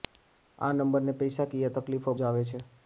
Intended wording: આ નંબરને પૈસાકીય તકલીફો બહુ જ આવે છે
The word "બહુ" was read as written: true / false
false